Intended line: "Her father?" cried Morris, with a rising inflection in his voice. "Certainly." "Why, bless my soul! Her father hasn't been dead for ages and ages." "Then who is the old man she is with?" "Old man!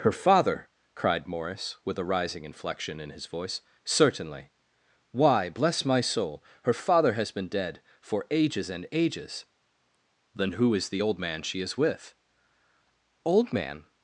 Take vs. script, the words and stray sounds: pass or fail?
fail